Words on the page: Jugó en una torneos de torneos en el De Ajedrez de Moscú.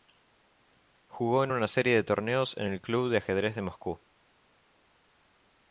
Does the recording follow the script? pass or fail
fail